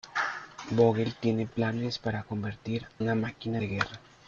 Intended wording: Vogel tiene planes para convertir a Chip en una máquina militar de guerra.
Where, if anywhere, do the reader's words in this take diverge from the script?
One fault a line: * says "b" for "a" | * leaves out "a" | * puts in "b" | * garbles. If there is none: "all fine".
* leaves out "a Chip en"
* leaves out "militar"